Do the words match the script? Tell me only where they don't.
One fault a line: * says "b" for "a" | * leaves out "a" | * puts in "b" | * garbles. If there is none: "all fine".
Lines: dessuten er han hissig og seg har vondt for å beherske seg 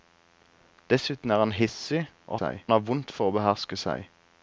all fine